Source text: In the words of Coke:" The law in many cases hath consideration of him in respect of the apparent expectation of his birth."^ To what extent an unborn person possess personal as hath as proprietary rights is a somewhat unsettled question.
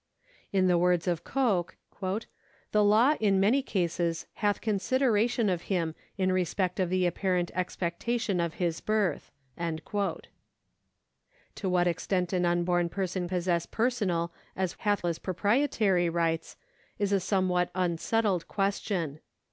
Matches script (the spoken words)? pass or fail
pass